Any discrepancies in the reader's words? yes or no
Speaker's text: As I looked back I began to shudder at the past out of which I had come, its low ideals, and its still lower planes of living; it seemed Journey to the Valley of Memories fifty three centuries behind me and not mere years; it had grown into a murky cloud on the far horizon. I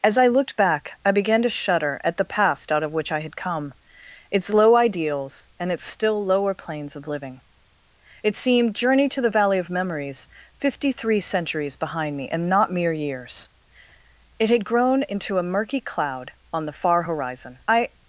no